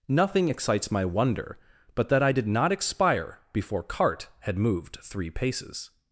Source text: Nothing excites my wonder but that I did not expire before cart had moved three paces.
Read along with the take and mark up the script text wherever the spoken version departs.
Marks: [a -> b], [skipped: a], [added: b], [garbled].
Nothing excites my wonder but that I did not expire before cart had moved three paces.